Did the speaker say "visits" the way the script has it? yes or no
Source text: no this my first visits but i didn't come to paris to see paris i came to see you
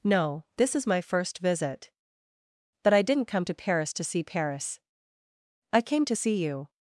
no